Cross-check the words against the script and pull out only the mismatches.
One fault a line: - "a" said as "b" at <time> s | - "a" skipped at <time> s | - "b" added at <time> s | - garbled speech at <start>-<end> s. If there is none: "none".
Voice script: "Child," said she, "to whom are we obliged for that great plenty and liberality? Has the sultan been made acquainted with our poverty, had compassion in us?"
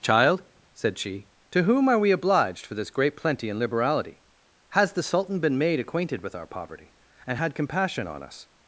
- "that" said as "this" at 2.7 s
- "and" added at 7.3 s
- "in" said as "on" at 8.1 s